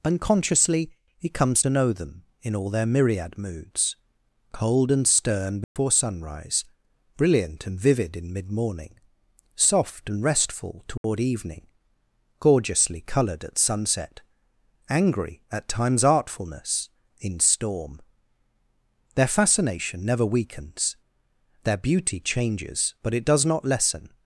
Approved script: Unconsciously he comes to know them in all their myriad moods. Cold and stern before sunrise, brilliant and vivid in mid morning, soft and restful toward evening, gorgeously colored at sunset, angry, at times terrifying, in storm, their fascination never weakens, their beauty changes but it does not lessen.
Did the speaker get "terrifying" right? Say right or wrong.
wrong